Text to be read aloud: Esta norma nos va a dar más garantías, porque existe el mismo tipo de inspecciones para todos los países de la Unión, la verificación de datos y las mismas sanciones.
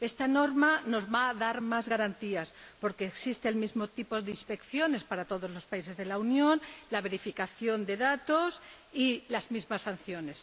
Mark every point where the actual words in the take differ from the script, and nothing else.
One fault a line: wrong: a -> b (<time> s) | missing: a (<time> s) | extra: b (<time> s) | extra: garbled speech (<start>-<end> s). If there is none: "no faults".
no faults